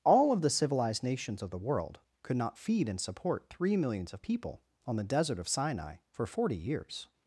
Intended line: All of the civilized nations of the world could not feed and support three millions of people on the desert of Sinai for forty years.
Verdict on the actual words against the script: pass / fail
pass